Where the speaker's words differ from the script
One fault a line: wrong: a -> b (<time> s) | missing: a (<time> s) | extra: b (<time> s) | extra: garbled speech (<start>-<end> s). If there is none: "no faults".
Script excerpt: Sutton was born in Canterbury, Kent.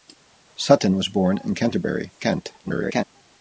extra: garbled speech (2.6-3.0 s)